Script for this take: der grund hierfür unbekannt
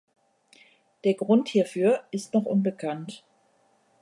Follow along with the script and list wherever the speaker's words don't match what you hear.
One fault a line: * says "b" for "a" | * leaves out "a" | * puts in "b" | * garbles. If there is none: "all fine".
* puts in "ist noch"